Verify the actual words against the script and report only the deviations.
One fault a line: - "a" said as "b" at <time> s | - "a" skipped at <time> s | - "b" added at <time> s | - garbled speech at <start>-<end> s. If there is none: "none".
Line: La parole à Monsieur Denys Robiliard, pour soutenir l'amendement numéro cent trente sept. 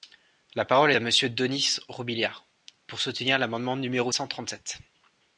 none